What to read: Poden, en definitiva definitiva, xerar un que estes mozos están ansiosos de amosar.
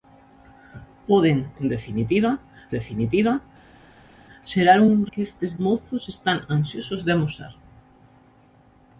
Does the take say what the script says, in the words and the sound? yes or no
yes